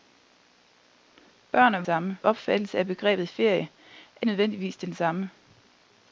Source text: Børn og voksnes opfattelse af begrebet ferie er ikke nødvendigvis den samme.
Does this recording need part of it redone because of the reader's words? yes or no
yes